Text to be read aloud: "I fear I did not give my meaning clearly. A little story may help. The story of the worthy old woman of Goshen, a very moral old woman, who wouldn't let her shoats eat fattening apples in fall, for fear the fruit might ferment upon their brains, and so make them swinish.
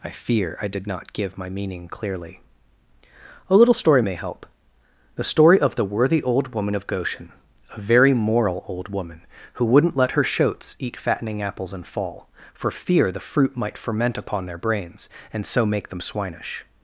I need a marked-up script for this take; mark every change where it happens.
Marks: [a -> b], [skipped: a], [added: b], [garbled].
"I fear I did not give my meaning clearly. A little story may help. The story of the worthy old woman of Goshen, a very moral old woman, who wouldn't let her shoats eat fattening apples in fall, for fear the fruit might ferment upon their brains, and so make them swinish.